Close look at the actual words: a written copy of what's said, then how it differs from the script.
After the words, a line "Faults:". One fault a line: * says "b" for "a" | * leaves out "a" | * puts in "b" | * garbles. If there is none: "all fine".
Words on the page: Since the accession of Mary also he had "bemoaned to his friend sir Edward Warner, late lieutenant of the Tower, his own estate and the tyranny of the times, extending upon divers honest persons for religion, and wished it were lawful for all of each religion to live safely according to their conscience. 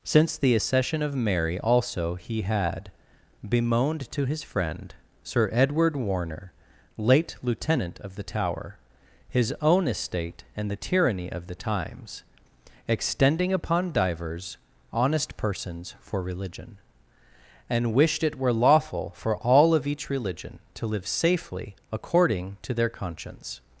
Since the accession of Mary also he had "bemoaned to his friend sir Edward Warner, late lieutenant of the Tower, his own estate and the tyranny of the times, extending upon divers honest persons for religion, and wished it were lawful for all of each religion to live safely according to their conscience.
Faults:
all fine